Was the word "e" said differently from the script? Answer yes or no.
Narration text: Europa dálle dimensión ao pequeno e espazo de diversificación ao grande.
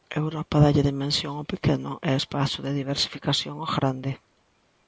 no